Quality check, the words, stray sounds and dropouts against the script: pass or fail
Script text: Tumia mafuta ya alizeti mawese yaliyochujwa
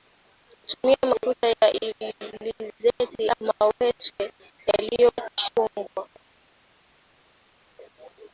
pass